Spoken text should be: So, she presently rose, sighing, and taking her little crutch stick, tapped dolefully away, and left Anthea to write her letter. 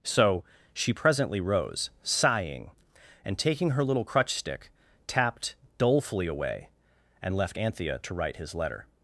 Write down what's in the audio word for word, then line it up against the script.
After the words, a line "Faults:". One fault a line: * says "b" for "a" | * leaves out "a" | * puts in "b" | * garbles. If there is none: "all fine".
So, she presently rose, sighing, and taking her little crutch stick, tapped dolefully away, and left Anthea to write his letter.
Faults:
* says "his" for "her"